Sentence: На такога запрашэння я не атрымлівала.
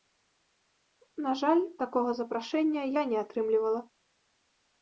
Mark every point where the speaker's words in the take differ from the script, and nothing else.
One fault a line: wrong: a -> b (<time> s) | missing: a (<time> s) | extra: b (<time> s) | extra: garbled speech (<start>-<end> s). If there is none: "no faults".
extra: жаль (1.4 s)